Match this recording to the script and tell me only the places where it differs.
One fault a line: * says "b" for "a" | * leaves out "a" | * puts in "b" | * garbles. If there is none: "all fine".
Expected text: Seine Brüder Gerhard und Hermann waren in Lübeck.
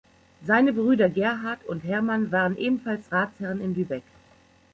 * puts in "ebenfalls Ratsherren"